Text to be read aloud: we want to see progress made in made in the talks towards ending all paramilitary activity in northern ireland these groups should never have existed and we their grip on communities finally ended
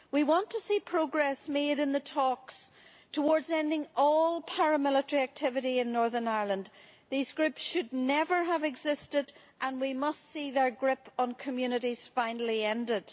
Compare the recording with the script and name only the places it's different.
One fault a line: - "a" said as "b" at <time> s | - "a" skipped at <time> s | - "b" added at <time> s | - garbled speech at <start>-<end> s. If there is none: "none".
- "made in" skipped at 1.9 s
- "must see" added at 9.9 s